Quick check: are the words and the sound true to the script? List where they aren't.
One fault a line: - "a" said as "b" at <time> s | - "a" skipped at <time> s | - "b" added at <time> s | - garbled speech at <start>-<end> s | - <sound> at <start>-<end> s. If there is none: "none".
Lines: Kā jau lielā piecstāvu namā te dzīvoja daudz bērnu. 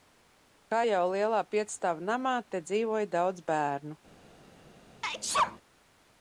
- sneeze at 5.0-5.6 s